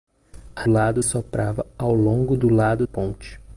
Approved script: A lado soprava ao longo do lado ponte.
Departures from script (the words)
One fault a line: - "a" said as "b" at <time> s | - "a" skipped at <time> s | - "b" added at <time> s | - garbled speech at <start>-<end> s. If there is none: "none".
none